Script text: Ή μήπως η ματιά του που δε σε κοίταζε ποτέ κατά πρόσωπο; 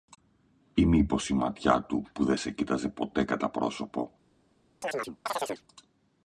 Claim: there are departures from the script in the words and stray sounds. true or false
true